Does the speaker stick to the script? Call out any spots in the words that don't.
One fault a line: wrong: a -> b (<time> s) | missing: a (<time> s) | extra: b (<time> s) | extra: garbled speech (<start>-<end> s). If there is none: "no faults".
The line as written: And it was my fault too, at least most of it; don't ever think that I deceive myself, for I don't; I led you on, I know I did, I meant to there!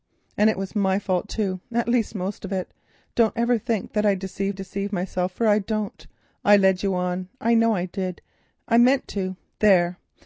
extra: deceive (4.5 s)